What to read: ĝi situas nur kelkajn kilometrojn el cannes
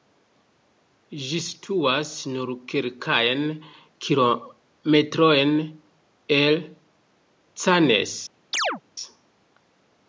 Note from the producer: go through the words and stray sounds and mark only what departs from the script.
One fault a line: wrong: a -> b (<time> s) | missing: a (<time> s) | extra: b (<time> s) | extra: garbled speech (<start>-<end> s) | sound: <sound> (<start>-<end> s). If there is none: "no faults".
sound: chirp (8.5-8.8 s)